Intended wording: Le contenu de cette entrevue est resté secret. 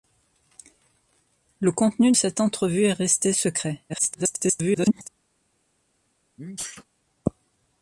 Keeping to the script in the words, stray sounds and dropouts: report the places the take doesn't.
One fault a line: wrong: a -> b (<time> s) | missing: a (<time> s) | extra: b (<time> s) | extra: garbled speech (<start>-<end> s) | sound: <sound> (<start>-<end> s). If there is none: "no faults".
missing: de (2.1 s)
extra: garbled speech (3.9-5.1 s)
sound: sneeze (6.4-6.8 s)